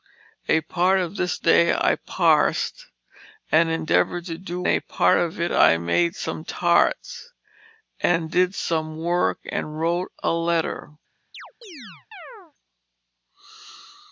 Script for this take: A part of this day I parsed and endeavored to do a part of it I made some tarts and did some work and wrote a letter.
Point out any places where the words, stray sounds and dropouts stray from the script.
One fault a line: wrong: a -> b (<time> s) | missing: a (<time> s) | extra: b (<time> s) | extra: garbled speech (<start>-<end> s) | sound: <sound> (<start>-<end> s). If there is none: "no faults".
sound: chirp (11.3-12.5 s)